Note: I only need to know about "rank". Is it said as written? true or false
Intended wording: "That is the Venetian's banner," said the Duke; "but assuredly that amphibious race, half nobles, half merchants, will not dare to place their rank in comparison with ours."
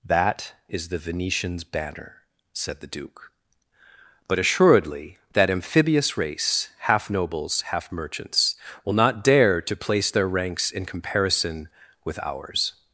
false